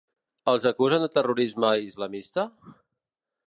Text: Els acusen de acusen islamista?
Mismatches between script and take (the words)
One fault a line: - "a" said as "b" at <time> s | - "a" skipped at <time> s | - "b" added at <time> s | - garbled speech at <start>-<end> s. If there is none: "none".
- "acusen" said as "terrorisme" at 1.2 s